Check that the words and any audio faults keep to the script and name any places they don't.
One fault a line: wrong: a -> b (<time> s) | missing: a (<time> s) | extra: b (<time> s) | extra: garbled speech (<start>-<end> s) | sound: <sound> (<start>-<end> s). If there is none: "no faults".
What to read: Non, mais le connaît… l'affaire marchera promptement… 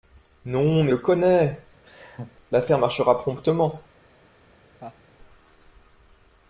sound: laugh (1.8-2.4 s)
sound: laugh (4.8-5.0 s)